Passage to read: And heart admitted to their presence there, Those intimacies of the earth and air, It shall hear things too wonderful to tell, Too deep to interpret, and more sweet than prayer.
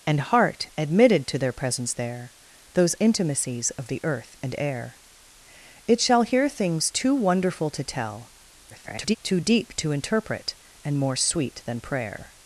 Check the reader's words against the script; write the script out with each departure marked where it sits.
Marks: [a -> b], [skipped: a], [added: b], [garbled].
And heart admitted to their presence there, Those intimacies of the earth and air, It shall hear things too wonderful to tell, [garbled] Too deep to interpret, and more sweet than prayer.